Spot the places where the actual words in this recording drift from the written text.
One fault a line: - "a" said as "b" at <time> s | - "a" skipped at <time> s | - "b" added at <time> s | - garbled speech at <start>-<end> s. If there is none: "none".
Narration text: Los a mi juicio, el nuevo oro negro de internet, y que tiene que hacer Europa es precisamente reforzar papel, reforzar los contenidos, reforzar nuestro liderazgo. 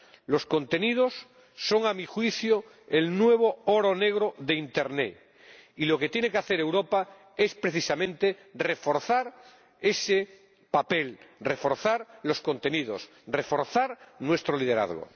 - "contenidos son" added at 0.5 s
- "lo" added at 5.8 s
- "ese" added at 9.8 s